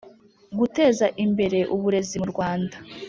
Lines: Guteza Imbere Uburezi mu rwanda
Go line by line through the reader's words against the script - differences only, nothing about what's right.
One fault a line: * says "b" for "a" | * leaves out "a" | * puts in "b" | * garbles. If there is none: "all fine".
all fine